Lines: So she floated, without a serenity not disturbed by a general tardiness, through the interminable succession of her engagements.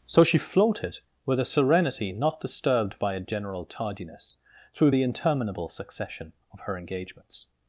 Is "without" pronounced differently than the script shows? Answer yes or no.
yes